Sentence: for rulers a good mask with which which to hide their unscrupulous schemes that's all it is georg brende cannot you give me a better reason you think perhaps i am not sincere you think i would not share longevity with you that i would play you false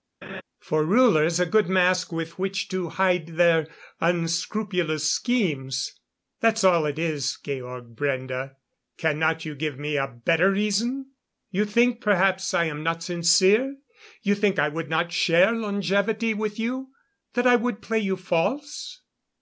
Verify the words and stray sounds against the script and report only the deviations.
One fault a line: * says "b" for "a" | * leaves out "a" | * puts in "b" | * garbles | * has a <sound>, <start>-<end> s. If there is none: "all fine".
* has a laugh, 0.2-0.4 s
* leaves out "which"